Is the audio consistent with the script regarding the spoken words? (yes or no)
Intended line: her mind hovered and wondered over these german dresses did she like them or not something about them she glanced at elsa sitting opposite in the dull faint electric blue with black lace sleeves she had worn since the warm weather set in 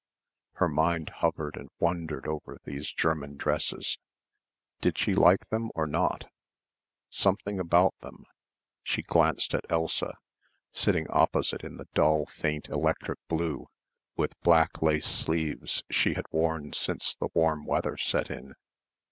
yes